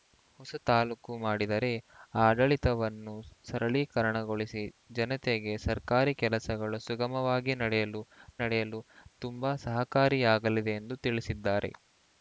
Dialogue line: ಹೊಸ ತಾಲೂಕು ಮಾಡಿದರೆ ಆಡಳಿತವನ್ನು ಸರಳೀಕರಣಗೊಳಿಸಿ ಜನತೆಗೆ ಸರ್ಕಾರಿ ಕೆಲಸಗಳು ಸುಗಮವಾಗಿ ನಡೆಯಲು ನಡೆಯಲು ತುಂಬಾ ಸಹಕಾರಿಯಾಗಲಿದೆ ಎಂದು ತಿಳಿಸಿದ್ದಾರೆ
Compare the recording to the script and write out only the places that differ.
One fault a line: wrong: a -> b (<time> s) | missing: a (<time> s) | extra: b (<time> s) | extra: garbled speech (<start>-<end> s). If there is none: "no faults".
no faults